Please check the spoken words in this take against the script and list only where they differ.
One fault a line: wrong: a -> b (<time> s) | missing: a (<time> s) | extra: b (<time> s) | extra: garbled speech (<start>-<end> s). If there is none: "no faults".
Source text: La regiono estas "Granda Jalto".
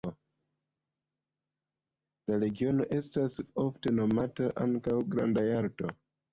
extra: ofte nomata ankaŭ (3.7 s)